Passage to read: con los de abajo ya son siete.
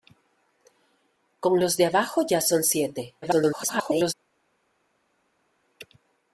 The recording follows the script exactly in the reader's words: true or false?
false